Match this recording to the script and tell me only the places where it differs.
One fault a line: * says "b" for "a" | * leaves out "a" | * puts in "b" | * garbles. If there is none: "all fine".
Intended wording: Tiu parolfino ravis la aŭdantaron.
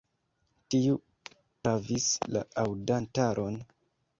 * leaves out "parolfino"